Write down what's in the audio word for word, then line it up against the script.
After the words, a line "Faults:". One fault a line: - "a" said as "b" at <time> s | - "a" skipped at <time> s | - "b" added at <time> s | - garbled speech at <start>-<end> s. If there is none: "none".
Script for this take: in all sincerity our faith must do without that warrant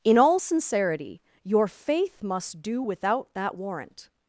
in all sincerity your faith must do without that warrant
Faults:
- "our" said as "your" at 1.4 s